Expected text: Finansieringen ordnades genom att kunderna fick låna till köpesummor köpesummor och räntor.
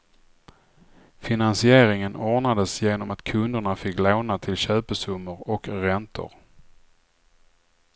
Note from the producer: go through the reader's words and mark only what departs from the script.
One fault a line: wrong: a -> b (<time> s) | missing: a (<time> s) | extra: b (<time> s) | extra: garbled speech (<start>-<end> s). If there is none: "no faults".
missing: köpesummor (5.5 s)